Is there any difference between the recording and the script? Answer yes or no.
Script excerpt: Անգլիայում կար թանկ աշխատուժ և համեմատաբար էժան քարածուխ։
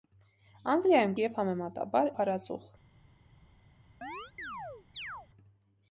yes